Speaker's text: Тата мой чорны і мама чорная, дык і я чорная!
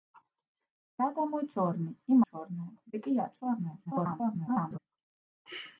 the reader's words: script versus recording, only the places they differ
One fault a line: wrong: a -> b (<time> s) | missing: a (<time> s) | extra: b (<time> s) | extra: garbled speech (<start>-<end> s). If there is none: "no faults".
missing: мама (2.2 s)
extra: garbled speech (3.9-4.8 s)